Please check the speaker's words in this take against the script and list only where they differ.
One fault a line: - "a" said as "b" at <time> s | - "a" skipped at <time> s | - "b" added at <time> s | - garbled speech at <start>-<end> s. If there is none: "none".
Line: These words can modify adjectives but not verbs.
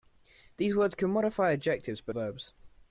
- "not" skipped at 2.1 s